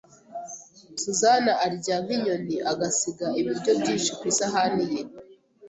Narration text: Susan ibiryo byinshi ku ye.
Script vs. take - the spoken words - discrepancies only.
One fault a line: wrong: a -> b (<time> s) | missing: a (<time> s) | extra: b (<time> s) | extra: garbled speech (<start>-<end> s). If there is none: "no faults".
extra: arya nk'inyoni agasiga (1.6 s)
extra: isahani (4.3 s)